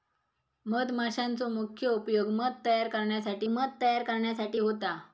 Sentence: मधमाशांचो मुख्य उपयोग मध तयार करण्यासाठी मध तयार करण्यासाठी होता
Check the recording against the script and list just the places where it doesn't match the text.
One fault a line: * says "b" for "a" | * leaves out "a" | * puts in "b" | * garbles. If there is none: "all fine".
all fine